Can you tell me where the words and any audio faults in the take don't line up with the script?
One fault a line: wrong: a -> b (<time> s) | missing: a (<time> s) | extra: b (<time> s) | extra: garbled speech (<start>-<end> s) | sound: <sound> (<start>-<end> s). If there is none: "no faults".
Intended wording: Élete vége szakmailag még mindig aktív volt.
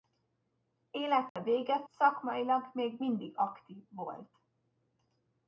sound: dropout (1.3-1.4 s)